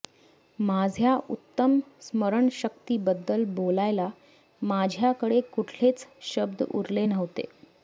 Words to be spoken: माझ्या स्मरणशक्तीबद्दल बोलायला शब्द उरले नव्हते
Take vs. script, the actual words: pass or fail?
fail